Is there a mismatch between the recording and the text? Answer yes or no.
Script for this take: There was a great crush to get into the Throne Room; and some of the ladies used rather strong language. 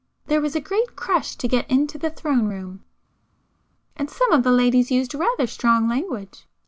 no